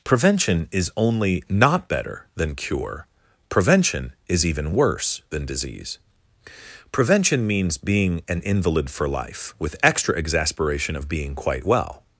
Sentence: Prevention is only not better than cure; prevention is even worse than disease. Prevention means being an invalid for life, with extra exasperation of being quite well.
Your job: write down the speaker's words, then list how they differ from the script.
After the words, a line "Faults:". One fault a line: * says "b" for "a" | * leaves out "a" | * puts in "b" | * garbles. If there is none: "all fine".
Prevention is only not better than cure; prevention is even worse than disease. Prevention means being an invalid for life, with extra exasperation of being quite well.
Faults:
all fine